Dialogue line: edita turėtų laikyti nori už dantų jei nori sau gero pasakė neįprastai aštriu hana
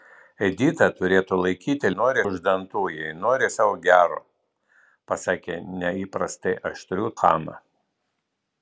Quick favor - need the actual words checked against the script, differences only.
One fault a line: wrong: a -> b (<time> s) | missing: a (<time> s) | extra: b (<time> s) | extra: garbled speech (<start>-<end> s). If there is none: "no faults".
no faults